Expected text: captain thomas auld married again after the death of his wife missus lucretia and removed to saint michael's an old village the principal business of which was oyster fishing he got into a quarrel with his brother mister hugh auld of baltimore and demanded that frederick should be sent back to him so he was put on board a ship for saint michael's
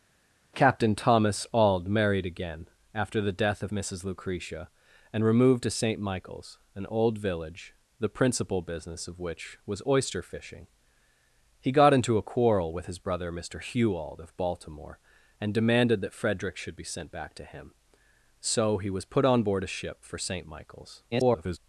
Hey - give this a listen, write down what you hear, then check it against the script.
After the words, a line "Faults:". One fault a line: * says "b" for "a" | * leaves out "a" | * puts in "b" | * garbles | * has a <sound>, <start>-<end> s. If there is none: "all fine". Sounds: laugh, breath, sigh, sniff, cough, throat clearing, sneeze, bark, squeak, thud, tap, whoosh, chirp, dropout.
captain thomas auld married again after the death of missus lucretia and removed to saint michael's an old village the principal business of which was oyster fishing he got into a quarrel with his brother mister hugh auld of baltimore and demanded that frederick should be sent back to him so he was put on board a ship for saint michael's [garbled]
Faults:
* leaves out "his wife"
* garbles